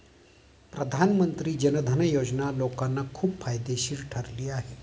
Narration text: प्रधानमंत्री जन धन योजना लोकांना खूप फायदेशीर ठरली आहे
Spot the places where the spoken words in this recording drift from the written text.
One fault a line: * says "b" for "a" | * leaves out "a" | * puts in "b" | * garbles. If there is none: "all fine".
all fine